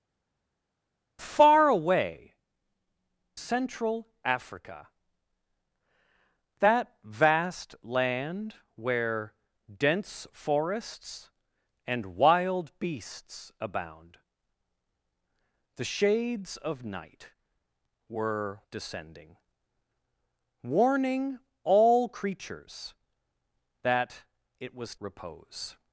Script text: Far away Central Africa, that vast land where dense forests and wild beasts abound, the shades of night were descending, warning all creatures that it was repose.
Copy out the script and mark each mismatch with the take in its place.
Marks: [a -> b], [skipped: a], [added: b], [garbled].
Far away Central Africa, that vast land where dense forests and wild beasts abound, the shades of night were descending, warning all creatures that it was repose.